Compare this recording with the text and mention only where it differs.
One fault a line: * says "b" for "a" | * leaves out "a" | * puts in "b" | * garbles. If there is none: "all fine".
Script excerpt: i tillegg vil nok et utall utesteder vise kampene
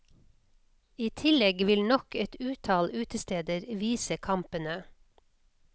all fine